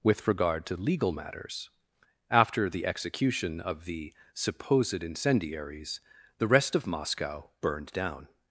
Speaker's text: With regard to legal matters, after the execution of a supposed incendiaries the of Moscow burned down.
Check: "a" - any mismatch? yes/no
yes